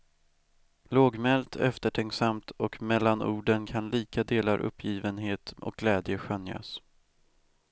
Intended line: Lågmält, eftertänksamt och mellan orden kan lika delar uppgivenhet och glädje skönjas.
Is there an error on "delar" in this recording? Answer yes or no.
no